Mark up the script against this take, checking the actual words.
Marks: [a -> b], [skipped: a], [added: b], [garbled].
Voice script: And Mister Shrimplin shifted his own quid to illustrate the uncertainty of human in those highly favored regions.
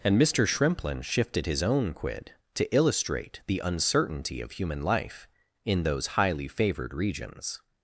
And Mister Shrimplin shifted his own quid to illustrate the uncertainty of human [added: life] in those highly favored regions.